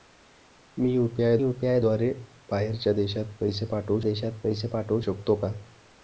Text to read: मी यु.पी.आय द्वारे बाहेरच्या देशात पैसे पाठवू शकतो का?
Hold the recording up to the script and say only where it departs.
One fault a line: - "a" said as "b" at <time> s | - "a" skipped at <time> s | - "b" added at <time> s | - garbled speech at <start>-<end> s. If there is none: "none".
- "यु.पी.आय" added at 1.4 s
- "देशात पैसे पाठवू" added at 4.0 s